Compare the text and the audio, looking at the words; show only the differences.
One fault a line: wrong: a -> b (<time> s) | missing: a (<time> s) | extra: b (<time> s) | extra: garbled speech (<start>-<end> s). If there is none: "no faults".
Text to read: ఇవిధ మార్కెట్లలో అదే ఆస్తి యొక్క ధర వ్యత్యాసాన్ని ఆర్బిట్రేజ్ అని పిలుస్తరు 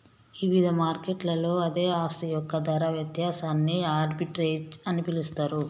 no faults